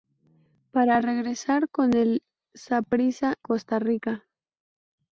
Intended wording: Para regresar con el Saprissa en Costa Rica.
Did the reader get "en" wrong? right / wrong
wrong